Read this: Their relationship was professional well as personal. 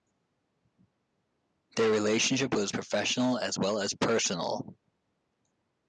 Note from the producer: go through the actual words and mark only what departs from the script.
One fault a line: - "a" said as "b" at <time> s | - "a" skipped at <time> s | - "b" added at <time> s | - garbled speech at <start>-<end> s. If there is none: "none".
- "as" added at 3.4 s